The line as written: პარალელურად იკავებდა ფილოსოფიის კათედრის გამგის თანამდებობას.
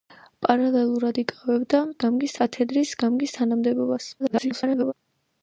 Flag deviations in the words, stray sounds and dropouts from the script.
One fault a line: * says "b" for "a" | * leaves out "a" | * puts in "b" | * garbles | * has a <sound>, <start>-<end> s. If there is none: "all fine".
* says "გამგის" for "ფილოსოფიის"
* garbles